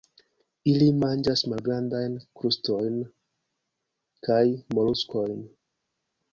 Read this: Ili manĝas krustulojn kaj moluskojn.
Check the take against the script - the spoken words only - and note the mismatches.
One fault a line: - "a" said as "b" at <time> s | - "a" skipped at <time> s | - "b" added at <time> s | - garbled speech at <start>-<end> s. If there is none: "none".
- "malgrandajn" added at 1.5 s